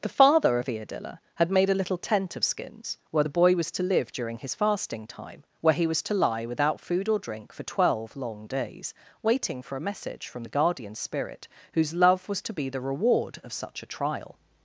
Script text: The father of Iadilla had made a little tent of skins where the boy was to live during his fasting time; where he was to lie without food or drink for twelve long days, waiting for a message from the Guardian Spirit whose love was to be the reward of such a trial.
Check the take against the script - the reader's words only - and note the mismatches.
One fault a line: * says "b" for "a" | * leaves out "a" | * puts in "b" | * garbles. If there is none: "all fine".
all fine